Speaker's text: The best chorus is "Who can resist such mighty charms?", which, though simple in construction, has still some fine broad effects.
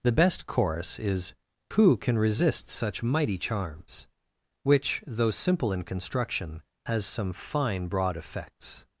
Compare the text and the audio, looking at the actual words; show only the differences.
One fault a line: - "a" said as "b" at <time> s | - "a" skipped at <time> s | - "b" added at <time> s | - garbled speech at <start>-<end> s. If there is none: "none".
- "still" skipped at 7.0 s